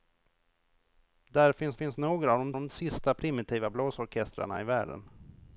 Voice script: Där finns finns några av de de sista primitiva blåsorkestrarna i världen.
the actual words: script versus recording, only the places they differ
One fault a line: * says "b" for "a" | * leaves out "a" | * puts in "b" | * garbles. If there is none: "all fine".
all fine